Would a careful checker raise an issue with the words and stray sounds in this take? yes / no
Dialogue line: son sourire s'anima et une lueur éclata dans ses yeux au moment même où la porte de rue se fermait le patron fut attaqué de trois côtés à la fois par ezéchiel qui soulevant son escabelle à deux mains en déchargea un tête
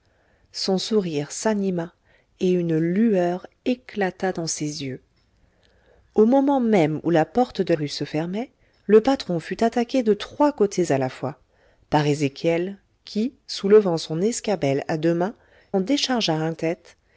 no